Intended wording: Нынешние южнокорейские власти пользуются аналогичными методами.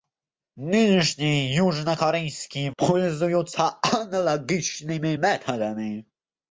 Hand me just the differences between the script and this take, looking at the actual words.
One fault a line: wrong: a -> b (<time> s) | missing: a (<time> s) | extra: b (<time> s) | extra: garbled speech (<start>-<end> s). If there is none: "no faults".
missing: власти (2.7 s)